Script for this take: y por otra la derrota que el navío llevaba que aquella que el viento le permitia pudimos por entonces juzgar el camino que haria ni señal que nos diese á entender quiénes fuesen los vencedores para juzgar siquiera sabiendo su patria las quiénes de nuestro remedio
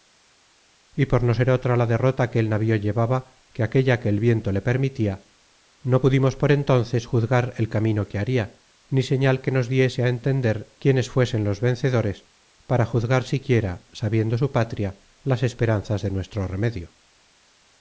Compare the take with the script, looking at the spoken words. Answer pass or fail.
fail